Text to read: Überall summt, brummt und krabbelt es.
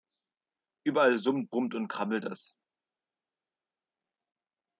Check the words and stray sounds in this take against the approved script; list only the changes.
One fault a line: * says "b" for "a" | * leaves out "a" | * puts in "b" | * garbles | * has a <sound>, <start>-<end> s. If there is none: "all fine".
all fine